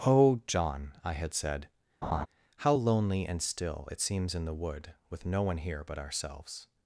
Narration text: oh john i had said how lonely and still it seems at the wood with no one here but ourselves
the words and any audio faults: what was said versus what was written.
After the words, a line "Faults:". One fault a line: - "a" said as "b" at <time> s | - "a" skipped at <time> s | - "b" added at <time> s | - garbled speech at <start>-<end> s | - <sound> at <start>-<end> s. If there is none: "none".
oh john i had said how lonely and still it seems in the wood with no one here but ourselves
Faults:
- laugh at 2.0-2.3 s
- "at" said as "in" at 4.3 s